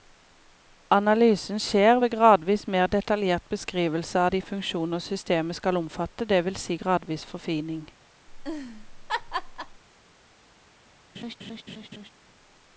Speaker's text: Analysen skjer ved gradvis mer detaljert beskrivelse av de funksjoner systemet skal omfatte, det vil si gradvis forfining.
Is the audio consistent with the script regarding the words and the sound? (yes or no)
no